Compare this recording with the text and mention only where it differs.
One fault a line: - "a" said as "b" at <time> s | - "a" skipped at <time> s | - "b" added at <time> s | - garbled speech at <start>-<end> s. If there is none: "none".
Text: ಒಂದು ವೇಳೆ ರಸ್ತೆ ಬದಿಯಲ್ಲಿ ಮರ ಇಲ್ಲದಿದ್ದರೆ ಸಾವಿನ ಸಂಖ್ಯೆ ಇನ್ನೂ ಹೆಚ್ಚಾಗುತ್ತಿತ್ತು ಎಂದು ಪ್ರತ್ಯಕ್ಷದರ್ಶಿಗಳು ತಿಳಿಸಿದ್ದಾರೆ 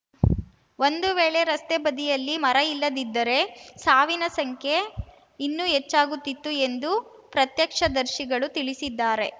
none